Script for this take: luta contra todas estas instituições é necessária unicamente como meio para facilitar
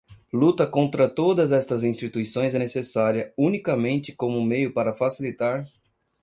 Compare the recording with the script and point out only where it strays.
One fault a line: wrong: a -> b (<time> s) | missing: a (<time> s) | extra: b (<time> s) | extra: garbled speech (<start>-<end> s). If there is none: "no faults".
no faults